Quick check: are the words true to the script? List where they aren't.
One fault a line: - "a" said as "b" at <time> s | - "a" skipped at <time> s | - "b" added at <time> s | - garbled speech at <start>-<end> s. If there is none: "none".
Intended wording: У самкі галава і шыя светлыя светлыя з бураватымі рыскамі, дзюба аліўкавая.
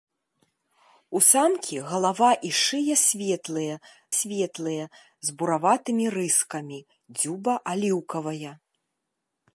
none